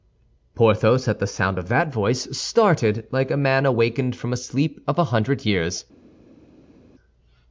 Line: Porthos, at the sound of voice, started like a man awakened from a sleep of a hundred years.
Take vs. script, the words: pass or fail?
fail